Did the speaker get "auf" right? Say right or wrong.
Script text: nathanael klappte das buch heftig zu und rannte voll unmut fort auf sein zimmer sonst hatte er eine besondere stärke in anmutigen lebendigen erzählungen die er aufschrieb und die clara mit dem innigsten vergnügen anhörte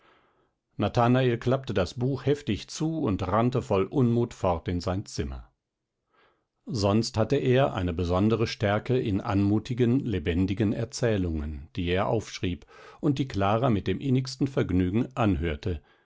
wrong